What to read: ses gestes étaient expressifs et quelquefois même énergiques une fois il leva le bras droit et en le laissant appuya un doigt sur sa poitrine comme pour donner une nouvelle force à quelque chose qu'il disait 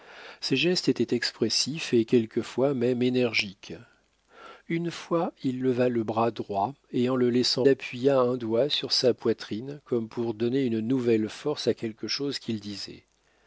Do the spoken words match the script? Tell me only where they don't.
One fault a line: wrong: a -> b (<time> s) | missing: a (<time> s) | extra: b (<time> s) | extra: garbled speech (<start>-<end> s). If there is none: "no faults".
no faults